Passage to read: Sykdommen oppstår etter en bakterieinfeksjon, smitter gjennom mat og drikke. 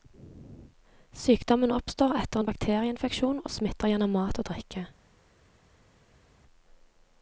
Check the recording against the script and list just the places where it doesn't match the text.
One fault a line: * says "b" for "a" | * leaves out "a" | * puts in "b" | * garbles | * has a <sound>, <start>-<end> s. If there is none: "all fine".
* puts in "og"